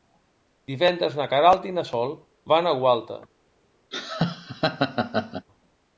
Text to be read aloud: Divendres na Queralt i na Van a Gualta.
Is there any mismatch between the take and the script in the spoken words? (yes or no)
yes